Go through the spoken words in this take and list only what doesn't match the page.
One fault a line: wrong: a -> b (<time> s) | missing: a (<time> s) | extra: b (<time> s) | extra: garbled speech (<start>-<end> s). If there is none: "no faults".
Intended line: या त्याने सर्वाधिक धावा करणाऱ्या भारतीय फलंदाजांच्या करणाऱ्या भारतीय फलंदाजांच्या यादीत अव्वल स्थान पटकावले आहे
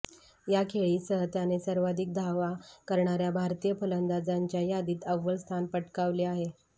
extra: खेळीसह (0.7 s)
missing: करणाऱ्या भारतीय फलंदाजांच्या (4.6 s)